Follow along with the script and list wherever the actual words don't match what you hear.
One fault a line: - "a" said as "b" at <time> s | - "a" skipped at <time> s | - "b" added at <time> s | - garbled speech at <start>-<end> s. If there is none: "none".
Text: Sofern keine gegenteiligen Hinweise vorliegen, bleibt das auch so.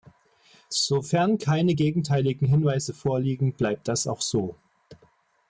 none